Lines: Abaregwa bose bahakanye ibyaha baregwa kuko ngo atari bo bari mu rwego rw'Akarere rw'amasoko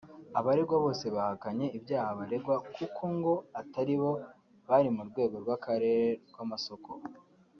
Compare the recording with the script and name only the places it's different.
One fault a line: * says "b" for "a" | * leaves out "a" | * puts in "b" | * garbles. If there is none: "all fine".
all fine